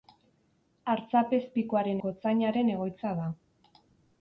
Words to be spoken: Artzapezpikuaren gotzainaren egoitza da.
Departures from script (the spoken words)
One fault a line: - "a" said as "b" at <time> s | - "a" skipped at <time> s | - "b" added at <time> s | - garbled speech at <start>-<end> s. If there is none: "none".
none